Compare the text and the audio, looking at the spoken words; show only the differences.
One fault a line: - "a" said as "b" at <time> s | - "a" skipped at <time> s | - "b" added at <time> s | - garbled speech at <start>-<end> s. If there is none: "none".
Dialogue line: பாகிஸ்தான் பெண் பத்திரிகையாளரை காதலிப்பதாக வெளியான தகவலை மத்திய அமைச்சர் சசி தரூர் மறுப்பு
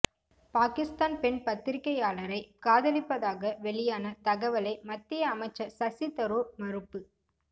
none